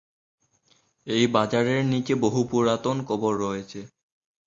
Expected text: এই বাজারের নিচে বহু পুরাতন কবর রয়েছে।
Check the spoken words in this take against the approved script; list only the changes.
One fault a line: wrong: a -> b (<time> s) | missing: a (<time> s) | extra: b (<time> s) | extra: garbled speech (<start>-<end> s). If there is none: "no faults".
no faults